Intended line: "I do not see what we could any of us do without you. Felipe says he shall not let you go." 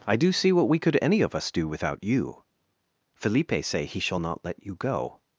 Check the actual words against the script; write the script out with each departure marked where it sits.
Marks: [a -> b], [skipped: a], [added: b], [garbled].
"I do [skipped: not] see what we could any of us do without you. Felipe [says -> say] he shall not let you go."